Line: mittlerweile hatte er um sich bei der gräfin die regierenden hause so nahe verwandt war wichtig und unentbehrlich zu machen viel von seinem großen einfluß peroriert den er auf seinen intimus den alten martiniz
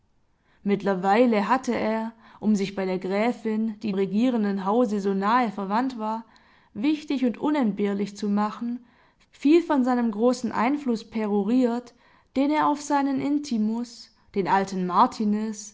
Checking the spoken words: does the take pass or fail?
pass